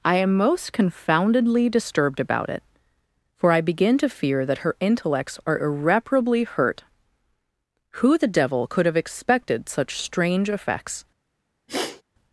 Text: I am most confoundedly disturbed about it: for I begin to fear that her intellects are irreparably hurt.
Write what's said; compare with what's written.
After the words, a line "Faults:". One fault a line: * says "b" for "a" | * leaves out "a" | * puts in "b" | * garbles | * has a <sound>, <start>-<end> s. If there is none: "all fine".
I am most confoundedly disturbed about it: for I begin to fear that her intellects are irreparably hurt. Who the devil could have expected such strange effects
Faults:
* puts in "Who the devil could have expected such strange effects"
* has a sniff, 11.7-12.0 s